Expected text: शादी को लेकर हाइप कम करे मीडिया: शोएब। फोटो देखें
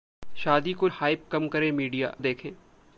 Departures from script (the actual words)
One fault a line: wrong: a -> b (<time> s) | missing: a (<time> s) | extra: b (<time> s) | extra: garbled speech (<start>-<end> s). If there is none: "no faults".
missing: लेकर (0.9 s)
missing: शोएब फोटो (2.1 s)